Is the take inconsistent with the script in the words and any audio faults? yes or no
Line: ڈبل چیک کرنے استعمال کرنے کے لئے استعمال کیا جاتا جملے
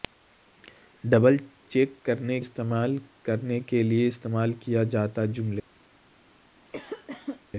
yes